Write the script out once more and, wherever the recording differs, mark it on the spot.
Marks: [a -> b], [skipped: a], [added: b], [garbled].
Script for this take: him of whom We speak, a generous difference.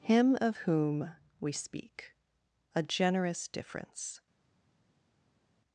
him of whom We speak, a generous difference.